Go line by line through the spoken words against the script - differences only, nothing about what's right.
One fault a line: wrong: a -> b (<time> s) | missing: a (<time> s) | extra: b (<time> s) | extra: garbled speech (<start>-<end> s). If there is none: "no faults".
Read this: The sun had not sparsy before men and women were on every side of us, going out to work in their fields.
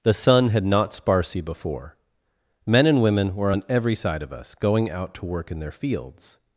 no faults